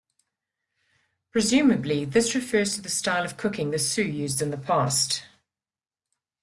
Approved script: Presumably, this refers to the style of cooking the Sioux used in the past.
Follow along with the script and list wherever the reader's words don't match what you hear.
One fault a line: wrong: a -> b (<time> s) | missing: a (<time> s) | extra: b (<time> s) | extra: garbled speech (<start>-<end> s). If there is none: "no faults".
no faults